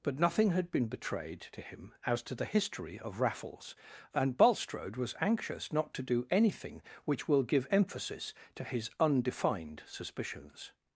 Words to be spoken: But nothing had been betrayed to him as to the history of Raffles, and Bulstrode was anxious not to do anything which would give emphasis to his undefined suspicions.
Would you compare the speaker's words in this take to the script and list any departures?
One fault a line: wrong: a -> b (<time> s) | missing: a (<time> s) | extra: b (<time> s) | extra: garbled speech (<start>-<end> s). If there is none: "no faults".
wrong: would -> will (7.3 s)